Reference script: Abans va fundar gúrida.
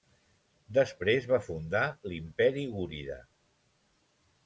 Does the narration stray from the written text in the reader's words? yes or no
yes